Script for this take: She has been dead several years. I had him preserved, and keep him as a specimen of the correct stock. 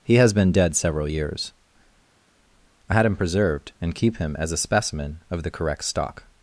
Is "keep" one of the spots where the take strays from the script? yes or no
no